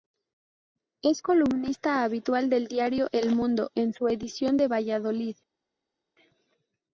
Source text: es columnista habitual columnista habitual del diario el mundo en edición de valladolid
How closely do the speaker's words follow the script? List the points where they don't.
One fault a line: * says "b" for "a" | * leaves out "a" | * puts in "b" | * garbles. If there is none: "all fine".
* leaves out "columnista habitual"
* puts in "su"